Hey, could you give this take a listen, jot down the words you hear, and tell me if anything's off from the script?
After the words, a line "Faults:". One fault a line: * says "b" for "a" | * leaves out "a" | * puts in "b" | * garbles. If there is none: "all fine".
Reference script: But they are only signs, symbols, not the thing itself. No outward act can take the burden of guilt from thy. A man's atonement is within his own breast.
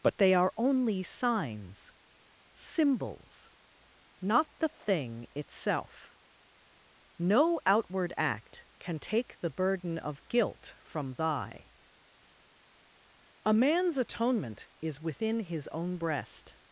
But they are only signs, symbols, not the thing itself. No outward act can take the burden of guilt from thy. A man's atonement is within his own breast.
Faults:
all fine